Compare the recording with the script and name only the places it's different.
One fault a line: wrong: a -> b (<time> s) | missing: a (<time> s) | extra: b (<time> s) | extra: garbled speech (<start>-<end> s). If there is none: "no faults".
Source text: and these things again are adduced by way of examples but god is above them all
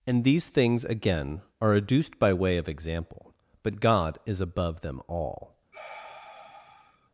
wrong: examples -> example (2.7 s)